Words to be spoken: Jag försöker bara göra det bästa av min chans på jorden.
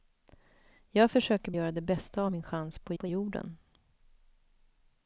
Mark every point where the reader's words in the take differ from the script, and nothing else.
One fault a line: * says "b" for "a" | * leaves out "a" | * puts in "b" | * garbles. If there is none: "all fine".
* leaves out "bara"
* puts in "på"